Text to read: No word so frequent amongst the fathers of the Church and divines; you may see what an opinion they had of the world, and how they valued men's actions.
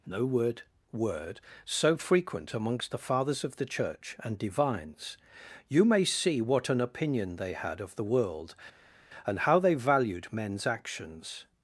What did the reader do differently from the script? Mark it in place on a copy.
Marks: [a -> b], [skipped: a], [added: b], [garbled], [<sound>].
No word [added: word] so frequent amongst the fathers of the Church and divines; you may see what an opinion they had of the world, and how they valued men's actions.